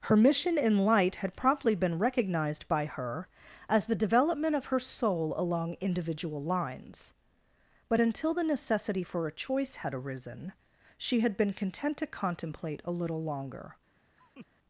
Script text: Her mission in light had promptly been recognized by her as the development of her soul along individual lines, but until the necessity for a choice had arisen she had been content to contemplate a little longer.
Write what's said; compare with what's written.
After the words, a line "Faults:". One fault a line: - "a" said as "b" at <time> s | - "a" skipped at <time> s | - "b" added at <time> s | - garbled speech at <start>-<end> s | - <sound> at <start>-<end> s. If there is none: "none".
Her mission in light had promptly been recognized by her as the development of her soul along individual lines, but until the necessity for a choice had arisen she had been content to contemplate a little longer.
Faults:
- laugh at 14.2-14.5 s